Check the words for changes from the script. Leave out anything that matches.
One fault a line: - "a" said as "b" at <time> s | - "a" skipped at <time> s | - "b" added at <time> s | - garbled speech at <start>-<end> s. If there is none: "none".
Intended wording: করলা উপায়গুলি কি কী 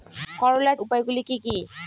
none